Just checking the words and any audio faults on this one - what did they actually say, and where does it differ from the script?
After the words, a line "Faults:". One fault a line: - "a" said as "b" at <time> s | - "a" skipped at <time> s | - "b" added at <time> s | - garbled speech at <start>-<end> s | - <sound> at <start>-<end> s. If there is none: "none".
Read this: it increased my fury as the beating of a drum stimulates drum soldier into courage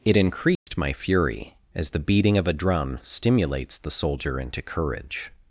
it increased my fury as the beating of a drum stimulates the soldier into courage
Faults:
- dropout at 0.6-0.7 s
- "drum" said as "the" at 3.8 s